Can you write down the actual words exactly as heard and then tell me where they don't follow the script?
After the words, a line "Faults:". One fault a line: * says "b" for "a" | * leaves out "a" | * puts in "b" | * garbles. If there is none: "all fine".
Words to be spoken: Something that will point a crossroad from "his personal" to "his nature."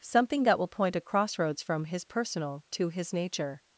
Something that will point a crossroads from "his personal" to "his nature."
Faults:
* says "crossroads" for "crossroad"